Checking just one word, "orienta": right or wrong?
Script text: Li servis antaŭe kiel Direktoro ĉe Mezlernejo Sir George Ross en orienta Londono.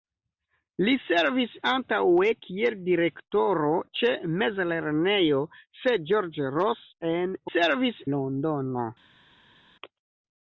wrong